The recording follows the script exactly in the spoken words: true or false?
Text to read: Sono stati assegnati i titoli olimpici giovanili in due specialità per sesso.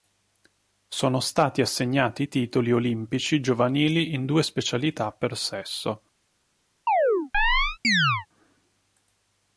true